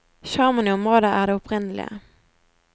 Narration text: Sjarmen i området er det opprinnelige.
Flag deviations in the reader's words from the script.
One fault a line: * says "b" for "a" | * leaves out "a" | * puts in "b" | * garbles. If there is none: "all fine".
all fine